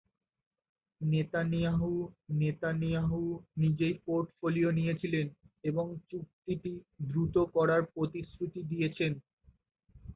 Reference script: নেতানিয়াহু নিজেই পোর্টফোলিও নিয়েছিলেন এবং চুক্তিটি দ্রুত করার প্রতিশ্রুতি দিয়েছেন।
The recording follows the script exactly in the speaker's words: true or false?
false